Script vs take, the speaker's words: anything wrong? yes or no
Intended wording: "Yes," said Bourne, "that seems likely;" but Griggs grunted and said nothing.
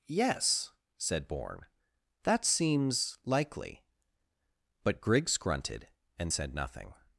no